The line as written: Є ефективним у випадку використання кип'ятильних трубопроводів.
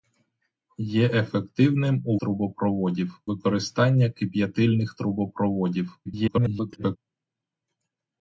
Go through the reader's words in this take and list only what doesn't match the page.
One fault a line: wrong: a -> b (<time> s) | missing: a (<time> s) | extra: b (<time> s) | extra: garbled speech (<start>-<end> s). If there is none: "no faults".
wrong: випадку -> трубопроводів (2.2 s)
extra: garbled speech (6.1-7.0 s)